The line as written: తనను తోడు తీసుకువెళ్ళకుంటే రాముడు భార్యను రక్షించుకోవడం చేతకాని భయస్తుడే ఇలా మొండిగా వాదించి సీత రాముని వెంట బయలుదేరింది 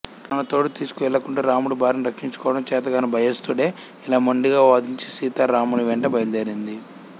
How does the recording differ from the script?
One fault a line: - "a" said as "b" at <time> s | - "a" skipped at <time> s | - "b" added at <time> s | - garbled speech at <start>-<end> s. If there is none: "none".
none